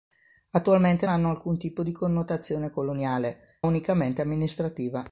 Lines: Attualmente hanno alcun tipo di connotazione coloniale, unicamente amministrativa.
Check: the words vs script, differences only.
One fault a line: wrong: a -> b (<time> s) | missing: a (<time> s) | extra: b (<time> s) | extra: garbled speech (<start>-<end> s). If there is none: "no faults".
no faults